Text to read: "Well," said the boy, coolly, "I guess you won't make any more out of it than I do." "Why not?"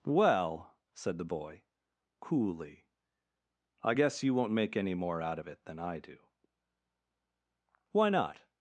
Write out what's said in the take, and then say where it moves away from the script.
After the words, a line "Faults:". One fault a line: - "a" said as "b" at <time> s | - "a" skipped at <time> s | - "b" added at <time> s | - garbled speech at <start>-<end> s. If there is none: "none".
"Well," said the boy, coolly, "I guess you won't make any more out of it than I do." "Why not?"
Faults:
none